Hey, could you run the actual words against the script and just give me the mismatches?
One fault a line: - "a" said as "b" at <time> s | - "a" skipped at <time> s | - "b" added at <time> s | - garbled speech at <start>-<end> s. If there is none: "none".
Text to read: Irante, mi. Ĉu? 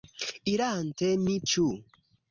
none